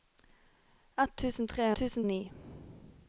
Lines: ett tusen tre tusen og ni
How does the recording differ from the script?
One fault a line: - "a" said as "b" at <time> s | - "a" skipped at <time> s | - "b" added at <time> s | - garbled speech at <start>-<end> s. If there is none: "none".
none